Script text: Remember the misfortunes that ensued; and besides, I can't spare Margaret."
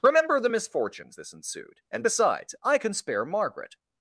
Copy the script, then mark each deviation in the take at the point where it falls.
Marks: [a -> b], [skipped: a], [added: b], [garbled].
Remember the misfortunes [that -> this] ensued; and besides, I [can't -> can] spare Margaret."